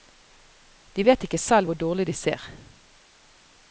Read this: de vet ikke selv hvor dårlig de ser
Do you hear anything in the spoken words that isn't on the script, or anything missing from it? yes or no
no